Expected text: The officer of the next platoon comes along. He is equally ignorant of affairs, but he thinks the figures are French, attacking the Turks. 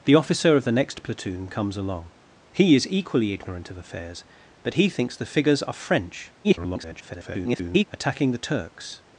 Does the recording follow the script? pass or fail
fail